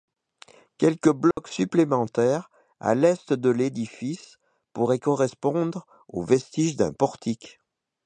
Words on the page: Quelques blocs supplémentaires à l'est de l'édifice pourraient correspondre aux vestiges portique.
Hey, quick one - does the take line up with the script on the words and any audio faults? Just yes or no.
no